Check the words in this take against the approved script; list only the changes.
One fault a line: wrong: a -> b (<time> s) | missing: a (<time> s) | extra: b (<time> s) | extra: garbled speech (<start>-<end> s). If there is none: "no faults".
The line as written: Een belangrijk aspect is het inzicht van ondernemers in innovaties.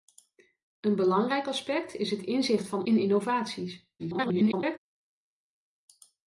missing: ondernemers (2.9 s)
extra: garbled speech (4.0-4.8 s)